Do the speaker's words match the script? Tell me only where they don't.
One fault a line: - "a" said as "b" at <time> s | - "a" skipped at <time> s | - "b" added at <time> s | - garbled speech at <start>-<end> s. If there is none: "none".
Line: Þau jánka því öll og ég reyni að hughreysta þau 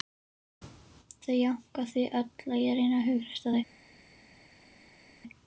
none